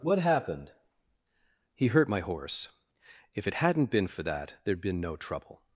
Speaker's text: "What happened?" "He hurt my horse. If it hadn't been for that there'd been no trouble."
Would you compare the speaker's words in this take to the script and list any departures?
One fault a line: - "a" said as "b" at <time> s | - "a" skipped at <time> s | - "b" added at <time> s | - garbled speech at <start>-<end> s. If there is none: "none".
none